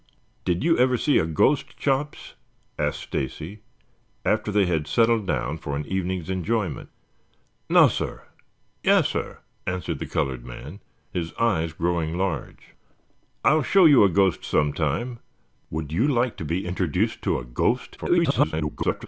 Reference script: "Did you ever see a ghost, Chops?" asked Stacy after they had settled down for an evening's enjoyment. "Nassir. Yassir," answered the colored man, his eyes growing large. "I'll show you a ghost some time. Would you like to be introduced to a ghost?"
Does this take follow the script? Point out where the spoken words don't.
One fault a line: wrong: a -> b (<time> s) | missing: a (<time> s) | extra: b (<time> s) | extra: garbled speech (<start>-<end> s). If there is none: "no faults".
extra: garbled speech (18.0-19.1 s)